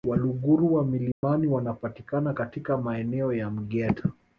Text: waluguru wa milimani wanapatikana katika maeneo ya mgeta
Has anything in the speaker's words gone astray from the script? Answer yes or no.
no